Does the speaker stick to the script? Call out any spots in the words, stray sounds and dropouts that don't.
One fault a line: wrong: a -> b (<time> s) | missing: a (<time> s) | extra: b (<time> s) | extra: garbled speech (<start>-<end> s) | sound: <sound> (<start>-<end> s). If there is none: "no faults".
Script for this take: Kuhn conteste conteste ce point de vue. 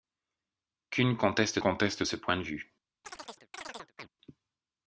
sound: chirp (3.0-4.1 s)